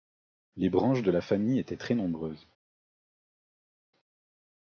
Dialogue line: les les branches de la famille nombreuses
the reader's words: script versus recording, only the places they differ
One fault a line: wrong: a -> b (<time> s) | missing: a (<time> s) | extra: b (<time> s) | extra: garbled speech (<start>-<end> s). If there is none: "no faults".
missing: les (0.7 s)
extra: étaient très (1.6 s)